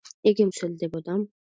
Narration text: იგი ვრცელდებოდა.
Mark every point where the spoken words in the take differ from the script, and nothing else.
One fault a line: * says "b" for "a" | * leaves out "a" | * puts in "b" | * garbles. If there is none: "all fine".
all fine